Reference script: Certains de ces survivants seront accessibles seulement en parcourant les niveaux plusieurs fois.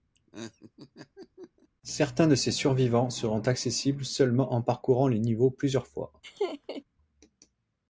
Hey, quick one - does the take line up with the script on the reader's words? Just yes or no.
yes